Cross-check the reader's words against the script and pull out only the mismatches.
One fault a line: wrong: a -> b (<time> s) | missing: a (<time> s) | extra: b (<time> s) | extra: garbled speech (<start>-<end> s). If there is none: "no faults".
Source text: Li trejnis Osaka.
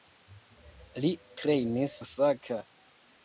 no faults